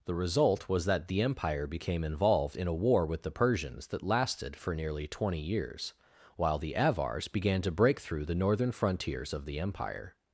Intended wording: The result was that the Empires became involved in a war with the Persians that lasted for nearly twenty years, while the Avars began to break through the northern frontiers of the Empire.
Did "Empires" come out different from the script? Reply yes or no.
yes